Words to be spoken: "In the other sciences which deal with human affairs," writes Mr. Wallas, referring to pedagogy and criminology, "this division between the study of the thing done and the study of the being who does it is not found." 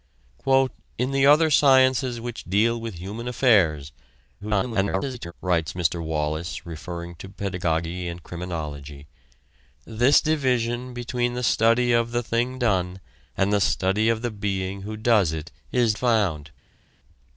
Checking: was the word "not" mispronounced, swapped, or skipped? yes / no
yes